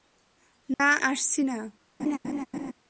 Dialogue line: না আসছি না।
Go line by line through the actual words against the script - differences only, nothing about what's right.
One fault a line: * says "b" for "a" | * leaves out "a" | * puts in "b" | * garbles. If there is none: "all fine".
all fine